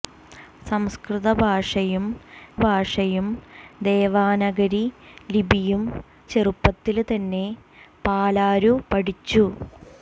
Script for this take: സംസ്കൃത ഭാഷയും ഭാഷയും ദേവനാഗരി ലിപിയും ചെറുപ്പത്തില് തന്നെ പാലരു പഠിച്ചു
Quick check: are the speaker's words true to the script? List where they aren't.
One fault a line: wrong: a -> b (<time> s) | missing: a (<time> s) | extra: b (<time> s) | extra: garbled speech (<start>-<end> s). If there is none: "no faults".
no faults